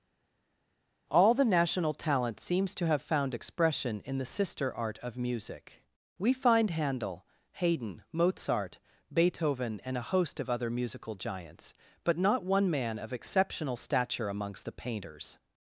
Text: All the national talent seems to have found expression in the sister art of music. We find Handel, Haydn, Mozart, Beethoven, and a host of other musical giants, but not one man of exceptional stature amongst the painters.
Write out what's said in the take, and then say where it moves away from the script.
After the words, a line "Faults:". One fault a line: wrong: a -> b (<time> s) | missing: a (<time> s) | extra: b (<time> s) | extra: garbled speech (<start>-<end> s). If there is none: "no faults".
All the national talent seems to have found expression in the sister art of music. We find Handel, Haydn, Mozart, Beethoven, and a host of other musical giants, but not one man of exceptional stature amongst the painters.
Faults:
no faults